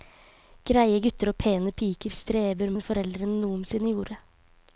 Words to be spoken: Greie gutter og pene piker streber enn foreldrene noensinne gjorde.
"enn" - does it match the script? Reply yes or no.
yes